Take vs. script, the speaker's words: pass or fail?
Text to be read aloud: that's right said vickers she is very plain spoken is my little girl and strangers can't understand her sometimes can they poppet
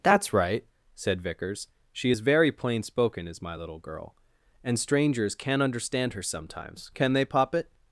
pass